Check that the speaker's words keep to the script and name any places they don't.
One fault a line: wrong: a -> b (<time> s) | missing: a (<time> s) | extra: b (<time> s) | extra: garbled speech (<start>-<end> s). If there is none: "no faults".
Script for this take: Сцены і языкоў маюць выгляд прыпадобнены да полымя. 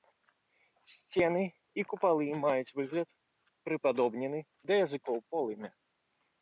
wrong: языкоў -> купалы (1.9 s)
extra: языкоў (4.8 s)